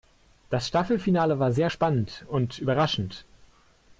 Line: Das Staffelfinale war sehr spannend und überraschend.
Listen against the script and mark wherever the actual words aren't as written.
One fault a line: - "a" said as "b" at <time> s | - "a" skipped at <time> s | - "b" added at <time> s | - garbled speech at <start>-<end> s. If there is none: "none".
none